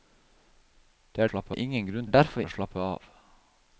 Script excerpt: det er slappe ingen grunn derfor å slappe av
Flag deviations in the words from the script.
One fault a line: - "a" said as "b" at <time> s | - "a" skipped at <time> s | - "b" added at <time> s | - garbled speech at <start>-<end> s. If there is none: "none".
none